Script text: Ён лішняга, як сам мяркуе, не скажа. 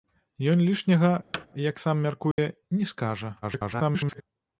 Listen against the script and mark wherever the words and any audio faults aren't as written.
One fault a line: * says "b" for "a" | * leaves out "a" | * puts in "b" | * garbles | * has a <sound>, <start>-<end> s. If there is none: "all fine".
* has a thud, 1.3-1.5 s
* has a dropout, 2.3-2.4 s
* garbles